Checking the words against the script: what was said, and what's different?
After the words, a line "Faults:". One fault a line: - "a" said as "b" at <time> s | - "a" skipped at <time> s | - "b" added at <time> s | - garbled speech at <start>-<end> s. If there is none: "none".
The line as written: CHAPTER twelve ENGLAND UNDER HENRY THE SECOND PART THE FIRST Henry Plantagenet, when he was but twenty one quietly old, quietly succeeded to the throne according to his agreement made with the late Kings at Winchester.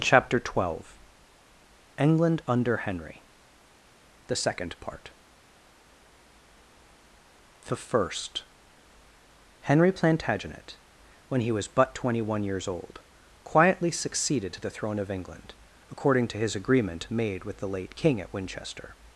CHAPTER twelve ENGLAND UNDER HENRY THE SECOND PART THE FIRST Henry Plantagenet, when he was but twenty one years old, quietly succeeded to the throne of England, according to his agreement made with the late King at Winchester.
Faults:
- "quietly" said as "years" at 12.4 s
- "of England" added at 15.0 s
- "Kings" said as "King" at 17.9 s